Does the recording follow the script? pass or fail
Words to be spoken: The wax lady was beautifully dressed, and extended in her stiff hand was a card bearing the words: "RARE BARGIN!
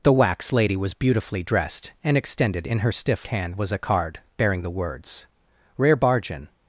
pass